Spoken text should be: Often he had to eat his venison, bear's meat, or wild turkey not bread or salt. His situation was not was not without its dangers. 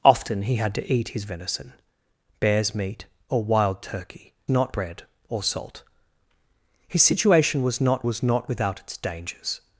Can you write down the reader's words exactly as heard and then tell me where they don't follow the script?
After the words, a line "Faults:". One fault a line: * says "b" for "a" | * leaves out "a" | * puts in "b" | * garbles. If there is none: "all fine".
Often he had to eat his venison, bear's meat, or wild turkey not bread or salt. His situation was not was not without its dangers.
Faults:
all fine